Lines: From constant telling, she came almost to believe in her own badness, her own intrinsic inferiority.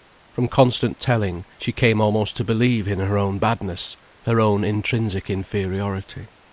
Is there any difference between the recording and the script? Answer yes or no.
no